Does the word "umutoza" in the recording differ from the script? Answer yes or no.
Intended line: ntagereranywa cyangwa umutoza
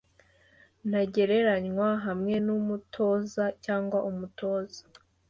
no